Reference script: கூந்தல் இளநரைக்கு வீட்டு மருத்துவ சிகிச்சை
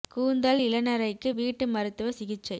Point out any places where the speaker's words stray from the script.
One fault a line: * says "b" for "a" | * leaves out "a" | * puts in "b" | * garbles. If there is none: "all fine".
all fine